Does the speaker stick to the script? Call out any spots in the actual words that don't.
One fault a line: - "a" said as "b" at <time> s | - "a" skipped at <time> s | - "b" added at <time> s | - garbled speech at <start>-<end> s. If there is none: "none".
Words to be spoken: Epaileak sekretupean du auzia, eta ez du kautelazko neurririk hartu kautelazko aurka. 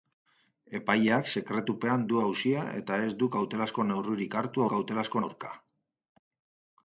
none